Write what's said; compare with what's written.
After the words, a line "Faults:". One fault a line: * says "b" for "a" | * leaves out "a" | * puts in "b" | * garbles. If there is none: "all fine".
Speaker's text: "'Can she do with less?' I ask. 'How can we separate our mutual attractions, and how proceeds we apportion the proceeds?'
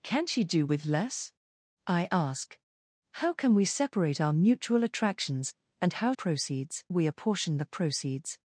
"'Can she do with less?' I ask. 'How can we separate our mutual attractions, and how proceeds we apportion the proceeds?'
Faults:
all fine